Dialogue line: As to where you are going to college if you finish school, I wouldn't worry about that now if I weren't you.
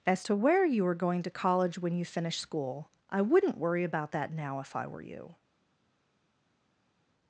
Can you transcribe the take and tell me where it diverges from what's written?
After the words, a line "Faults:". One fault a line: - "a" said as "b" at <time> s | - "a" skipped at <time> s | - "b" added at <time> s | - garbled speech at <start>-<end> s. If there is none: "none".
As to where you are going to college when you finish school, I wouldn't worry about that now if I were you.
Faults:
- "if" said as "when" at 1.8 s
- "weren't" said as "were" at 4.9 s